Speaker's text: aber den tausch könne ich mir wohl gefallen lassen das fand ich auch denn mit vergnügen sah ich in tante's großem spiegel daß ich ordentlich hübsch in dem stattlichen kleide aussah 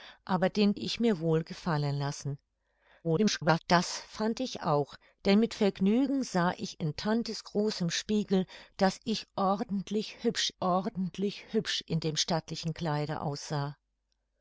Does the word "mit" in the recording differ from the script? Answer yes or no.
no